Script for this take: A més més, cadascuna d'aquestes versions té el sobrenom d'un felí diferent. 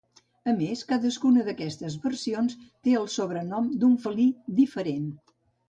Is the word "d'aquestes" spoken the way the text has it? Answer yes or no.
yes